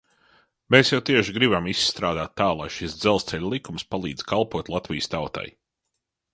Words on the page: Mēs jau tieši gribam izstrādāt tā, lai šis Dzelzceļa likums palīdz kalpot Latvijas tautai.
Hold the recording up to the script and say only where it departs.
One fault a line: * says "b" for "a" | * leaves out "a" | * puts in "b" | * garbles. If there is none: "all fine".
all fine